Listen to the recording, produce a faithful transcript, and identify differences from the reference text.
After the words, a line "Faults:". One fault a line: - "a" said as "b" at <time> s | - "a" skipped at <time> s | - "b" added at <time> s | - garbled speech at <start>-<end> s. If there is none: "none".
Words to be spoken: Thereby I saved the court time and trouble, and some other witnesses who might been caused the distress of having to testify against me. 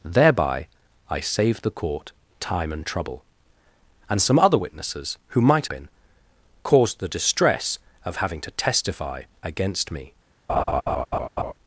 Thereby I saved the court time and trouble, and some other witnesses who might been caused the distress of having to testify against me.
Faults:
none